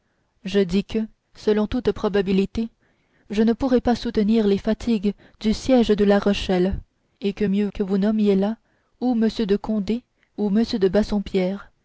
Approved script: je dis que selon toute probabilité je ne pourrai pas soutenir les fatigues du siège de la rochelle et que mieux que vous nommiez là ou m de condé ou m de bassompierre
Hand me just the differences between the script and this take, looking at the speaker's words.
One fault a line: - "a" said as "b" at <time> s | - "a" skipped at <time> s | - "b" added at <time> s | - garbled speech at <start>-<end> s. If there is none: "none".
none